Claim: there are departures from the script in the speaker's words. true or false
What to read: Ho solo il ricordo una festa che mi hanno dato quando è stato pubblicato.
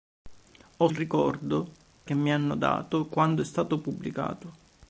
true